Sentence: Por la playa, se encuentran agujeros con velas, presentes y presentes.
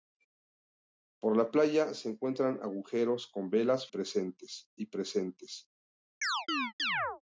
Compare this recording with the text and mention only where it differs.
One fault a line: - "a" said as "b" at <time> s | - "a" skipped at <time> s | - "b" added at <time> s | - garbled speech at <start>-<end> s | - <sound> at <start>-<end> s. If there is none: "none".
- chirp at 6.2-7.2 s